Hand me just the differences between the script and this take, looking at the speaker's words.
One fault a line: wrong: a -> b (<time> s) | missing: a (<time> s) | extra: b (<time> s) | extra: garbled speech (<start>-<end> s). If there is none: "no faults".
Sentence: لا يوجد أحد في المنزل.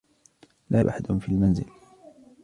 missing: يوجد (0.8 s)